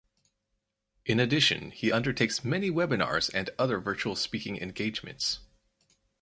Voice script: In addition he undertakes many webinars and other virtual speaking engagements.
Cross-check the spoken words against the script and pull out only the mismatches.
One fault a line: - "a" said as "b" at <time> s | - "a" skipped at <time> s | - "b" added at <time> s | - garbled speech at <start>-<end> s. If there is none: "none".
none